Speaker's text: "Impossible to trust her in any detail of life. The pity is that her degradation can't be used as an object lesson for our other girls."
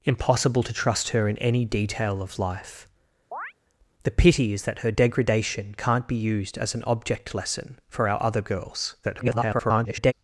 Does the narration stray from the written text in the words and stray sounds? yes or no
yes